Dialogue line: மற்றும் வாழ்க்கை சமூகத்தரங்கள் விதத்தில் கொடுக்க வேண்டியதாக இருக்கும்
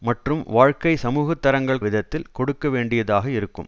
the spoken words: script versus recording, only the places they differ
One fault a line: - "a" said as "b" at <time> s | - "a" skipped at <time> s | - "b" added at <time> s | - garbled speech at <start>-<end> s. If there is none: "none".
none